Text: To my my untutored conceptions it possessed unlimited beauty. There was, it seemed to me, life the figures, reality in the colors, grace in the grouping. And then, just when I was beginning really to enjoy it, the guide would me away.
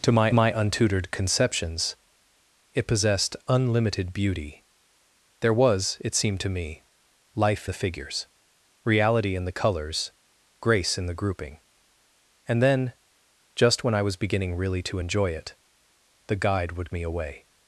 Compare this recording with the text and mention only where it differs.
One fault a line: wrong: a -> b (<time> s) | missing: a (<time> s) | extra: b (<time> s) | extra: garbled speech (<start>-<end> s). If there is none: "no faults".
no faults